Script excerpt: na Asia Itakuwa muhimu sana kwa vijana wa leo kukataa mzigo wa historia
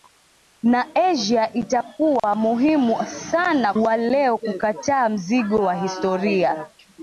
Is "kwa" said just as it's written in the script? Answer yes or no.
no